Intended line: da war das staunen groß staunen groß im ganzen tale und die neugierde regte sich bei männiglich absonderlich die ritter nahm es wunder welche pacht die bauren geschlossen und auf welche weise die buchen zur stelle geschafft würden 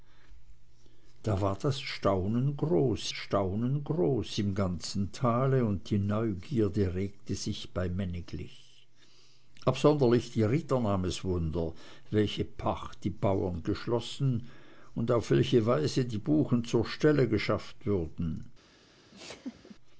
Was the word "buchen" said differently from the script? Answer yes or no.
no